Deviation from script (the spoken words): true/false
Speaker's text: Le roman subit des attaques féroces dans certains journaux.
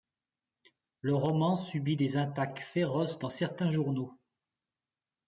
false